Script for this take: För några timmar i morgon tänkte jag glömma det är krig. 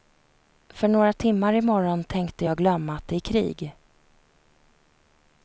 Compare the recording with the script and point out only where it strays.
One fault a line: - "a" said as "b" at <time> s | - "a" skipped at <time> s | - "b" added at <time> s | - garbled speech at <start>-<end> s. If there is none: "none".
- "att" added at 3.0 s